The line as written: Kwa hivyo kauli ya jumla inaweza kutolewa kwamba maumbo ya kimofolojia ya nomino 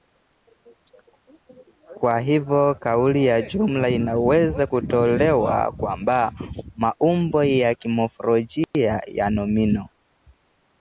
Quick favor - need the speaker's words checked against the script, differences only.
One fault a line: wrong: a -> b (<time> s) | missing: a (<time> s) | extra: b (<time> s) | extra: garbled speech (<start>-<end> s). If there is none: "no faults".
no faults